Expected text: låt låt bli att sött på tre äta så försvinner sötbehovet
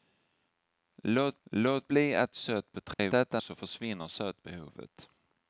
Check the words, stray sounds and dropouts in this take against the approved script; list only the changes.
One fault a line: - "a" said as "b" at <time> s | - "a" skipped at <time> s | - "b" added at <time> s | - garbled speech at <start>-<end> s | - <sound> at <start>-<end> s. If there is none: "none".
- dropout at 2.9-3.0 s